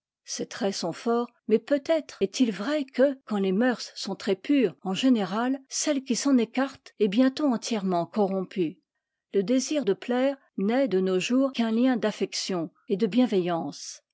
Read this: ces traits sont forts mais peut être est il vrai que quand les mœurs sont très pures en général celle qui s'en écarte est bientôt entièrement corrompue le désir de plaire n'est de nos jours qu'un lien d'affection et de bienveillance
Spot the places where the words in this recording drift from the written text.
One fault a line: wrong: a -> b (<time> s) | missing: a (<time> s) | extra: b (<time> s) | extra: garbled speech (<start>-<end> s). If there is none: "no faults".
no faults